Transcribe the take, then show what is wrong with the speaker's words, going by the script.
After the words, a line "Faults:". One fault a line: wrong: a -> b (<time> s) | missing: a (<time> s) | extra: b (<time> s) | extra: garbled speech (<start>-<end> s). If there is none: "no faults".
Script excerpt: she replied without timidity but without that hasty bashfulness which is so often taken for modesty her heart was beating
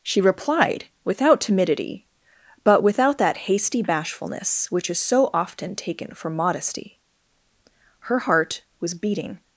she replied without timidity but without that hasty bashfulness which is so often taken for modesty her heart was beating
Faults:
no faults